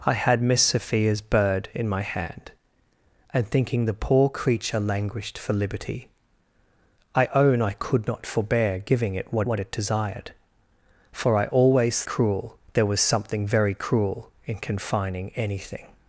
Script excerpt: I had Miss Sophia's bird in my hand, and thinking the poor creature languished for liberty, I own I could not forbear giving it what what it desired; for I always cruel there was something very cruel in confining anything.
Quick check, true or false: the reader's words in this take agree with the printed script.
true